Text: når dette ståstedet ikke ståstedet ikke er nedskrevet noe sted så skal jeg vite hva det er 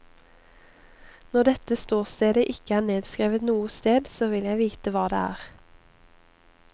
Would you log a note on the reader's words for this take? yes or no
yes